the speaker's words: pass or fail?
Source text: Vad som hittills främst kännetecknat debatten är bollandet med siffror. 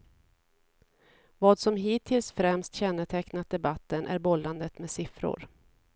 pass